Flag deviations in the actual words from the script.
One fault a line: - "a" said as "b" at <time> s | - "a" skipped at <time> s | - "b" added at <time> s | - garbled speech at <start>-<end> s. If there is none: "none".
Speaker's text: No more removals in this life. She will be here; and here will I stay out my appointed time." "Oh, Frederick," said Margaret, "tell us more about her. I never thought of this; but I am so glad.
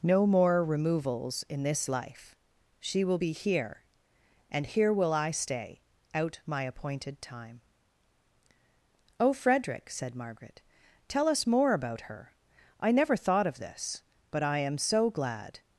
none